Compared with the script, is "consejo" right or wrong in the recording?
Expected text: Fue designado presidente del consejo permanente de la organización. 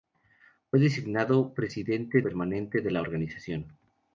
wrong